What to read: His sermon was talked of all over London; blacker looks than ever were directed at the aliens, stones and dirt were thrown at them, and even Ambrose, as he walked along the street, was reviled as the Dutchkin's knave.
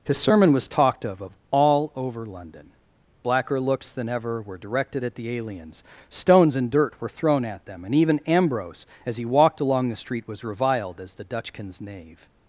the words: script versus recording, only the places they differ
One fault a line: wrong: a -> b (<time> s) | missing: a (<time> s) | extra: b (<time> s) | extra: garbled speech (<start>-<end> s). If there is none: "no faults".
extra: of (1.2 s)